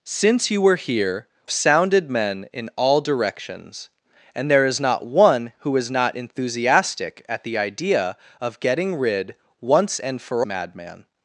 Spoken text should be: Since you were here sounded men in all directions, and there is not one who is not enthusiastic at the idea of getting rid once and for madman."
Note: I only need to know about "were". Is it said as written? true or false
true